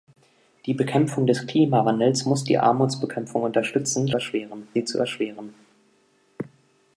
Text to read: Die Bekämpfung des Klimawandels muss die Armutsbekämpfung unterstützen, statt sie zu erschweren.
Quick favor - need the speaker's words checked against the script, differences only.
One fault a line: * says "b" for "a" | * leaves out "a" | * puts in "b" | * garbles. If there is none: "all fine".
* says "erschweren" for "statt"